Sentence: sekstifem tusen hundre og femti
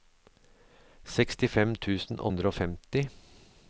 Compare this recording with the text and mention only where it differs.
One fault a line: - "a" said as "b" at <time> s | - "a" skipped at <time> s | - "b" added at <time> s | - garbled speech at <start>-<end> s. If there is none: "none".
none